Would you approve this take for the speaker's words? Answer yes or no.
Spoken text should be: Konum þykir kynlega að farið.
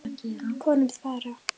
no